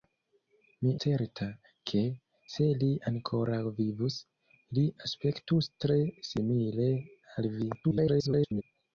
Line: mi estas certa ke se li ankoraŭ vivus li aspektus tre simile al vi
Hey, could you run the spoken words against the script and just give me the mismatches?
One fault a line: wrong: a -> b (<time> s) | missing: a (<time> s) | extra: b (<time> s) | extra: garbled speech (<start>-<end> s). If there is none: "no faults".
missing: estas (0.9 s)
extra: garbled speech (7.8-8.6 s)